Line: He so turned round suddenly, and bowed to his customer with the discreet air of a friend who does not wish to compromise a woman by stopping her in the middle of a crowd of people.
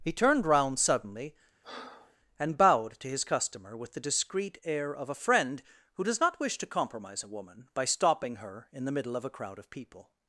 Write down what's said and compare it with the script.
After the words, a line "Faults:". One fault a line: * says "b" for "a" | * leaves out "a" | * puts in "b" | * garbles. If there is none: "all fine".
He turned round suddenly, and bowed to his customer with the discreet air of a friend who does not wish to compromise a woman by stopping her in the middle of a crowd of people.
Faults:
* leaves out "so"